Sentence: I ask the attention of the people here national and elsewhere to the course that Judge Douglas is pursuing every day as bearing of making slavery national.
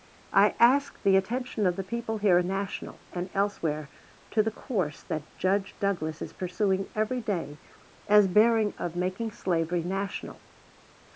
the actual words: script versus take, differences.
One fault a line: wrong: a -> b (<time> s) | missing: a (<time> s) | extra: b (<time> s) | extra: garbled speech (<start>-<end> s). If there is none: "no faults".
no faults